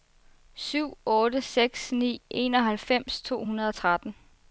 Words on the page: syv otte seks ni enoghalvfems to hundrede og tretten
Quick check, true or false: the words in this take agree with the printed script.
true